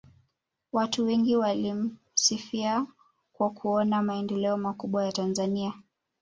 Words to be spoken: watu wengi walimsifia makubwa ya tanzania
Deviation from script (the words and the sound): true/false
true